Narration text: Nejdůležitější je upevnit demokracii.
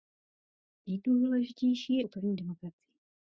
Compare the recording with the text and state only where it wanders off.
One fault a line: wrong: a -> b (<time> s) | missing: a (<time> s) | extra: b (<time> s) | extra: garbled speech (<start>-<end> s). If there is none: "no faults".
no faults